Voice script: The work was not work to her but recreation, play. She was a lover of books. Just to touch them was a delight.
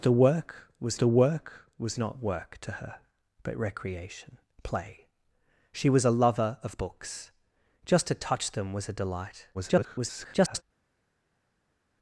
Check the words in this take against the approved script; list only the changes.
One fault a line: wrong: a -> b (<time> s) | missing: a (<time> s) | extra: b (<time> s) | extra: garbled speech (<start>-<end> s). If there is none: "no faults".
extra: the work was (1.0 s)
extra: garbled speech (9.5-10.6 s)